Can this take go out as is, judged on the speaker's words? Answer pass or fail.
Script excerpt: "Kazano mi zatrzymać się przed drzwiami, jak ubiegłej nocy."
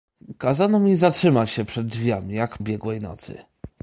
pass